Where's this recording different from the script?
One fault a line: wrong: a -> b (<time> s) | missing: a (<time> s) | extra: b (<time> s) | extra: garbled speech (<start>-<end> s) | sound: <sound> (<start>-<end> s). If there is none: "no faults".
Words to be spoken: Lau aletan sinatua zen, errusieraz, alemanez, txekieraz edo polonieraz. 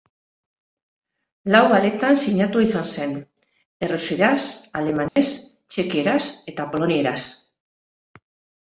extra: izan (2.7 s)
sound: dropout (5.1-5.2 s)
wrong: edo -> eta (6.5 s)